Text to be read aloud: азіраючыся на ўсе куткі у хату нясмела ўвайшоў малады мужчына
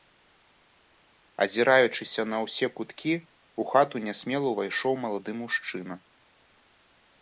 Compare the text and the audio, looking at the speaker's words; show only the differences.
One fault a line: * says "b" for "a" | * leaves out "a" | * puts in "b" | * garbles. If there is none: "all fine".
all fine